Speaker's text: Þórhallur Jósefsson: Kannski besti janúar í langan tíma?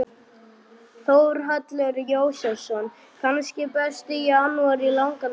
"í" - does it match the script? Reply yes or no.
yes